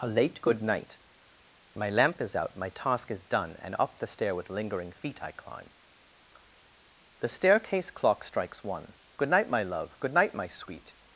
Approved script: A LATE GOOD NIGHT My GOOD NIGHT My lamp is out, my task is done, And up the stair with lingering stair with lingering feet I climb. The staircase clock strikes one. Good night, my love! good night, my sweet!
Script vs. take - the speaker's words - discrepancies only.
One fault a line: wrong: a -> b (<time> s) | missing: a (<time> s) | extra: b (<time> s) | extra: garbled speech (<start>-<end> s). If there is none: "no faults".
missing: GOOD NIGHT My (1.9 s)
missing: stair with lingering (4.9 s)